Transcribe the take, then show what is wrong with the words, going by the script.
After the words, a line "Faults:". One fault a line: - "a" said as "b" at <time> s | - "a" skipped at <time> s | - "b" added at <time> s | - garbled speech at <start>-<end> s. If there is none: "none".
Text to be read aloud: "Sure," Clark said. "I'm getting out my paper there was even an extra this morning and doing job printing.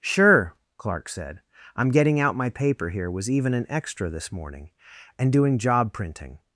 "Sure," Clark said. "I'm getting out my paper here was even an extra this morning and doing job printing.
Faults:
- "there" said as "here" at 2.9 s